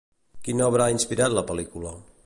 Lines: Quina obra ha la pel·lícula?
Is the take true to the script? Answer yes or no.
no